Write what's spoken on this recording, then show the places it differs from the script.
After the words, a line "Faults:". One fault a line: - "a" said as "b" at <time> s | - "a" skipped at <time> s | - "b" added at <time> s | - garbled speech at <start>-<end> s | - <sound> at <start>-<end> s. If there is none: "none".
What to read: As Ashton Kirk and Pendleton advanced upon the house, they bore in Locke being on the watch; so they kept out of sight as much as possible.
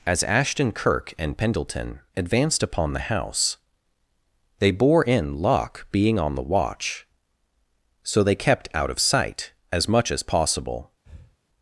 As Ashton Kirk and Pendleton advanced upon the house, they bore in Locke being on the watch; so they kept out of sight as much as possible.
Faults:
- breath at 11.0-11.4 s